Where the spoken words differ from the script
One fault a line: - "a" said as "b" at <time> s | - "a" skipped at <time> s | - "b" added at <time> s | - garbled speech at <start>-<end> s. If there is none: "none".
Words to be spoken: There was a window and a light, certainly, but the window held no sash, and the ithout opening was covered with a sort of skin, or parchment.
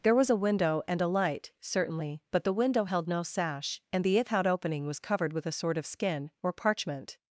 none